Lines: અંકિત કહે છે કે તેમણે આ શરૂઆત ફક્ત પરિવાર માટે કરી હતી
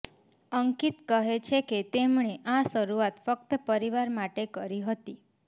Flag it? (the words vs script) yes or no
no